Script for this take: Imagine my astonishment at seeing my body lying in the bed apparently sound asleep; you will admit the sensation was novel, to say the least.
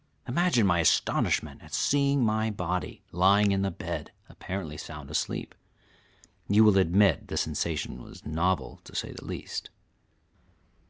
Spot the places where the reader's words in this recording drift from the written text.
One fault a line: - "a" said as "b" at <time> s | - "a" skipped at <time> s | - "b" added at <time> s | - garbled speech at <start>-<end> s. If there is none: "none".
none